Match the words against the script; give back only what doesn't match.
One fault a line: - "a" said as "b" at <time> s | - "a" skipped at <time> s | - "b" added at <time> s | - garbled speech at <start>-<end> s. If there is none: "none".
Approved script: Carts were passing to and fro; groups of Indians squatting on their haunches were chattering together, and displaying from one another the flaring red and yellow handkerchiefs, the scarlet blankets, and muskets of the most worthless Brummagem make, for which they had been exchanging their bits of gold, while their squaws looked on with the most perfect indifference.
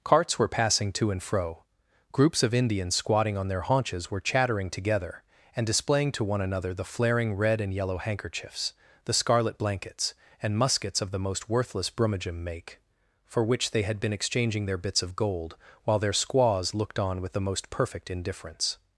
- "from" said as "to" at 6.1 s